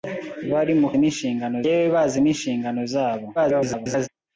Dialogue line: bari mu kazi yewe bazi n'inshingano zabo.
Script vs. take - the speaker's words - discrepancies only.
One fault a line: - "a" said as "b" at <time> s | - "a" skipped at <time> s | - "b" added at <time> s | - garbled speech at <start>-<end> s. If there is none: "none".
- "kazi" said as "n'inshingano" at 1.0 s
- garbled speech at 3.4-4.1 s